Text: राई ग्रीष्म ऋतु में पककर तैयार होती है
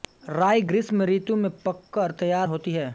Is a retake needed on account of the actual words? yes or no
no